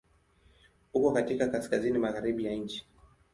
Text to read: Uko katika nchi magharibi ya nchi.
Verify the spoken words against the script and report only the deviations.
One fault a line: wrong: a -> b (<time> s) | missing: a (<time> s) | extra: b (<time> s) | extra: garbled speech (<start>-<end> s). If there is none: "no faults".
wrong: nchi -> kaskazini (1.5 s)